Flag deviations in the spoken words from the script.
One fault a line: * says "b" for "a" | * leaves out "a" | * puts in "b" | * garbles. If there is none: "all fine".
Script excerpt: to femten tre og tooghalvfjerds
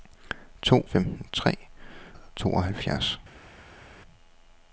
all fine